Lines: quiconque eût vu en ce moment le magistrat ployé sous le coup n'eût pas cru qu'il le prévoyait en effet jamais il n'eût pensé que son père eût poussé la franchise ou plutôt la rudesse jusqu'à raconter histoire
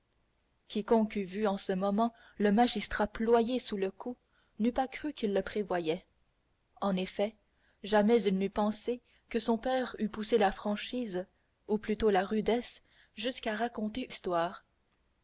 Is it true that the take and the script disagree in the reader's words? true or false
false